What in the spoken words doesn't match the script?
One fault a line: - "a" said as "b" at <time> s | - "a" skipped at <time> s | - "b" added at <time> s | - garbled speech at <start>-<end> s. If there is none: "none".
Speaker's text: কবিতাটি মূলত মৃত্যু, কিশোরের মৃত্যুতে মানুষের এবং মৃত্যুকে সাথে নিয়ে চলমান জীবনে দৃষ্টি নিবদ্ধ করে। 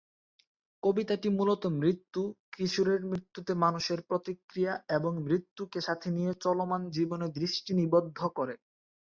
- "প্রতিক্রিয়া" added at 4.1 s